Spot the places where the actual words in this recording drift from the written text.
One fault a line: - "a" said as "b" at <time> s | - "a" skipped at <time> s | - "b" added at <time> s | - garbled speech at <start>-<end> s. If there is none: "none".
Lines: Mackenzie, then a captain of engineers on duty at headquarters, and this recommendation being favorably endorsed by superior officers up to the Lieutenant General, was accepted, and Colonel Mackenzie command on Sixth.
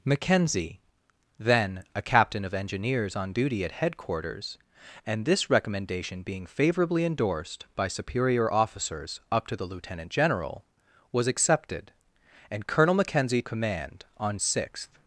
none